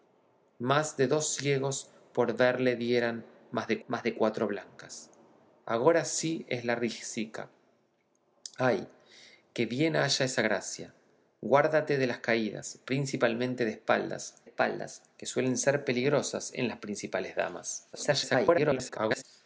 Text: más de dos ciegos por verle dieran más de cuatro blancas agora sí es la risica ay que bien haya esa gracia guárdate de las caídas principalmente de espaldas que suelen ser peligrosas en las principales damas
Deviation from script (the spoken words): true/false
true